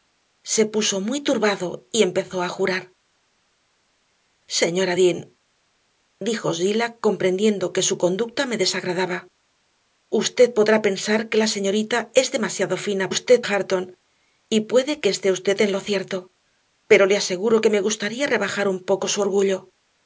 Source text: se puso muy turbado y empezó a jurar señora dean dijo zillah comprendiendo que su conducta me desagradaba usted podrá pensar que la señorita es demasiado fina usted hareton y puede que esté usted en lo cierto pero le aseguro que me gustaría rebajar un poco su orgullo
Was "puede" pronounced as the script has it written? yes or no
yes